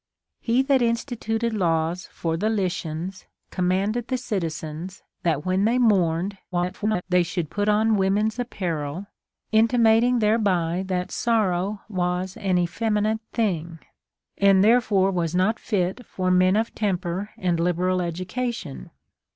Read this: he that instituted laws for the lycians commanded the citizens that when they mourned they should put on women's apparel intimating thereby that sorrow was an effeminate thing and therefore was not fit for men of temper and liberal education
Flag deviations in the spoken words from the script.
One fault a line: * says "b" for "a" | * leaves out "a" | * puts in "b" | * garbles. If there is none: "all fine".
* garbles